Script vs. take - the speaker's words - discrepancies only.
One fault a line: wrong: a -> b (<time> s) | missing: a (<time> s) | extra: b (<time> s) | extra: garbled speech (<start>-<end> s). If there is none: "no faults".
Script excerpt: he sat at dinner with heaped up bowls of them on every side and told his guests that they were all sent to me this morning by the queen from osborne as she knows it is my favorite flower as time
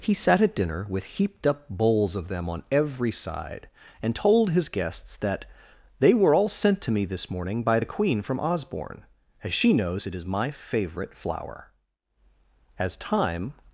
no faults